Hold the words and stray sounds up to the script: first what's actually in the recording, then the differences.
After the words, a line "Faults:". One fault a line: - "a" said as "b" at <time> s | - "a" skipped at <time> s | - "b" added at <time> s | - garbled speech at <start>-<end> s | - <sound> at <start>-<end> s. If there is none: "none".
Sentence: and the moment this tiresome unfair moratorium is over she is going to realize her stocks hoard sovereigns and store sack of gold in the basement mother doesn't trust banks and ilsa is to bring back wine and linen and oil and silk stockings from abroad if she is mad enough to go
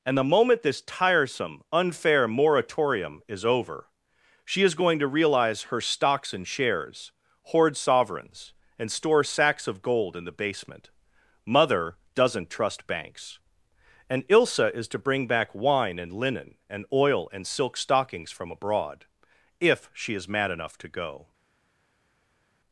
and the moment this tiresome unfair moratorium is over she is going to realize her stocks and shares hoard sovereigns and store sacks of gold in the basement mother doesn't trust banks and ilsa is to bring back wine and linen and oil and silk stockings from abroad if she is mad enough to go
Faults:
- "and shares" added at 6.3 s
- "sack" said as "sacks" at 9.2 s